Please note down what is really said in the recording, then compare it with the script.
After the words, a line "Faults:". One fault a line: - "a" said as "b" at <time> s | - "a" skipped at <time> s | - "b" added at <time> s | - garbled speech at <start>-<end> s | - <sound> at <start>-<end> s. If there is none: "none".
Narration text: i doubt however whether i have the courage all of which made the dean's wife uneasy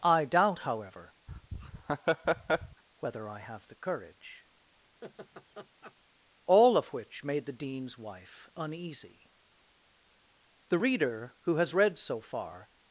i doubt however whether i have the courage all of which made the dean's wife uneasy the reader who has read so far
Faults:
- laugh at 1.3-2.8 s
- laugh at 5.0-5.9 s
- "the reader who has read so far" added at 10.7 s